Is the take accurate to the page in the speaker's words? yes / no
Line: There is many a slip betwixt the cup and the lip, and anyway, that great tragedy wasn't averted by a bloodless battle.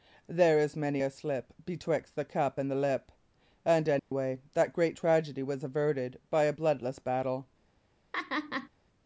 no